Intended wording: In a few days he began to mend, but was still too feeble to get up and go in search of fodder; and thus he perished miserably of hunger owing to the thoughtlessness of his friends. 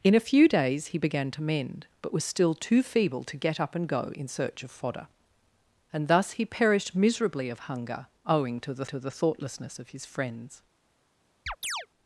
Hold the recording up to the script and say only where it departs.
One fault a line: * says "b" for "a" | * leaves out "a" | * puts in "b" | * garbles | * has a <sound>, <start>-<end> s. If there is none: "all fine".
* puts in "to the"
* has a chirp, 11.5-11.9 s